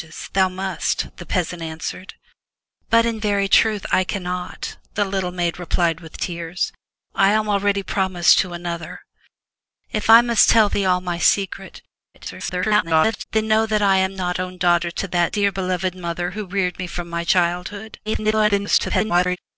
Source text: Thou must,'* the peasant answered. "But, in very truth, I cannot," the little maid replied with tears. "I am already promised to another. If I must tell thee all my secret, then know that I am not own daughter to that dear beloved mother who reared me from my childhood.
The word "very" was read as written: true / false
true